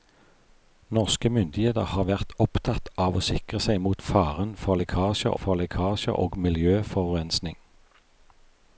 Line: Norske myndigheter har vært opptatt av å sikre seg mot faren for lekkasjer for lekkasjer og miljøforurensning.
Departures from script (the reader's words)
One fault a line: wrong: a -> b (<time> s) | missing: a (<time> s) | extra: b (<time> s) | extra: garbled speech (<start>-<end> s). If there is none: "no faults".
no faults